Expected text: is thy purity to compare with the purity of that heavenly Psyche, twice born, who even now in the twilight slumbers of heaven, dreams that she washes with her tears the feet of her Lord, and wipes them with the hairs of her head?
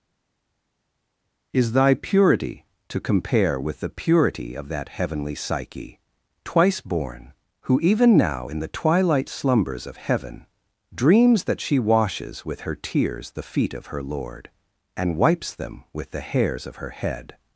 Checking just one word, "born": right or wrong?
right